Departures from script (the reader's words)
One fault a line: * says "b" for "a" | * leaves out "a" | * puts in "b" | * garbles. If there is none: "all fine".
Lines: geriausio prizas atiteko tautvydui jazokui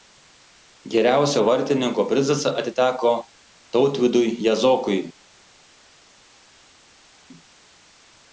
* puts in "vartininko"